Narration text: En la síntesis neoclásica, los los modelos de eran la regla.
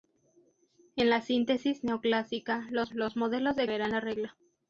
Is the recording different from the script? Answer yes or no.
no